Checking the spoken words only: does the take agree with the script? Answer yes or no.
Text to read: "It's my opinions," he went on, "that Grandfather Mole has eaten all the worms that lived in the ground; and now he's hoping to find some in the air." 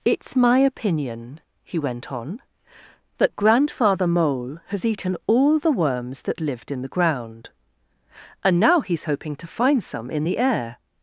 no